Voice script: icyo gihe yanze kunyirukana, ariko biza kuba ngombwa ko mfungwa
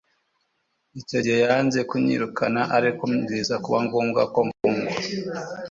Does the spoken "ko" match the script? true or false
true